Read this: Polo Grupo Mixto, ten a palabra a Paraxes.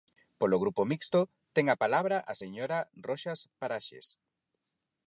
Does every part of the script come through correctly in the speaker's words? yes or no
no